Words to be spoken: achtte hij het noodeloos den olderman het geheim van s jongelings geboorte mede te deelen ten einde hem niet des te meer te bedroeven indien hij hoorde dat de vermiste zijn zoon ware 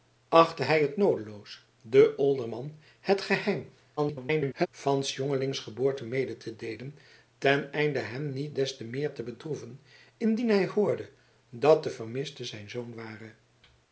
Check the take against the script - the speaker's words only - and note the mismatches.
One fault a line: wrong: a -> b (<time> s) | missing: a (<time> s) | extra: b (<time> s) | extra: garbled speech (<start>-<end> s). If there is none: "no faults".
extra: garbled speech (4.0-4.7 s)